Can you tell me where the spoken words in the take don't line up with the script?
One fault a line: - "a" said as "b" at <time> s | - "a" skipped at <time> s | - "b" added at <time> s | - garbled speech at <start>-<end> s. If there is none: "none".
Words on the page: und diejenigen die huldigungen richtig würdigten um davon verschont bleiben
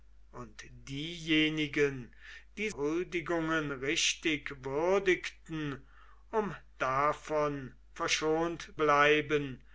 none